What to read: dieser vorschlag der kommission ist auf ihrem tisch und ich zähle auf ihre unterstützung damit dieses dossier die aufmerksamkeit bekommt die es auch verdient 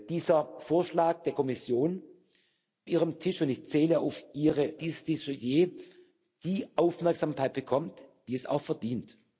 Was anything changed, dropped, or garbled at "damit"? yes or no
yes